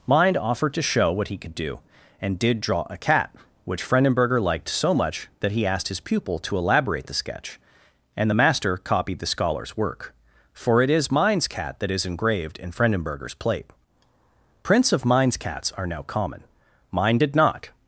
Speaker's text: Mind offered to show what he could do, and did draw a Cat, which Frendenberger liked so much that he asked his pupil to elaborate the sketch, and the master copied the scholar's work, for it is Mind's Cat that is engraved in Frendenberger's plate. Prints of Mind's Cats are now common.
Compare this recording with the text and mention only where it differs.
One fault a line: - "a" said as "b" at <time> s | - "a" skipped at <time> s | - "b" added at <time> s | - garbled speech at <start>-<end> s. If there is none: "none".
- "Mind did not" added at 16.9 s